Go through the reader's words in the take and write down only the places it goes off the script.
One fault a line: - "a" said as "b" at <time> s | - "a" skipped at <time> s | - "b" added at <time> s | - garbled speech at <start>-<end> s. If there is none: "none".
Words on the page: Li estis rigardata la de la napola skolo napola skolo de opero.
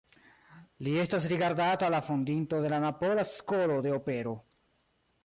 - "estis" said as "estas" at 1.0 s
- "fondinto" added at 2.1 s
- "napola skolo" skipped at 3.8 s